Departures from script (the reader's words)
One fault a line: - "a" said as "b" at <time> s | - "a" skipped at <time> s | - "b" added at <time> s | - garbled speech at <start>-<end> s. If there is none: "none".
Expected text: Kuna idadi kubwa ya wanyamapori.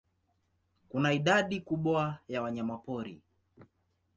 none